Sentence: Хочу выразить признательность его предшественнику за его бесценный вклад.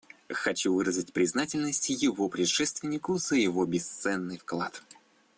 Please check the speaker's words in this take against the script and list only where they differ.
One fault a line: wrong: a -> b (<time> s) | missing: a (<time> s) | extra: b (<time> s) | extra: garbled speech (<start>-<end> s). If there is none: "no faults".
no faults